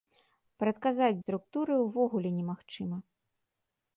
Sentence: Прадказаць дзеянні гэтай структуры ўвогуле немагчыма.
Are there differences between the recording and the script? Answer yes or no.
yes